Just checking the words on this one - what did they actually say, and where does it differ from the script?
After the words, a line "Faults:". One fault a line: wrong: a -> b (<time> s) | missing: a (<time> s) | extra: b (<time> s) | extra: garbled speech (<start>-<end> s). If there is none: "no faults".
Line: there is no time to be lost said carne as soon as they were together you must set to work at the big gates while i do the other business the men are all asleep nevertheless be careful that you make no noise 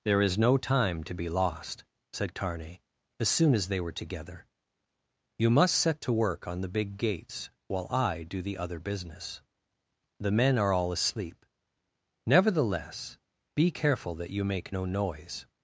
there is no time to be lost said carne as soon as they were together you must set to work on the big gates while i do the other business the men are all asleep nevertheless be careful that you make no noise
Faults:
wrong: at -> on (6.5 s)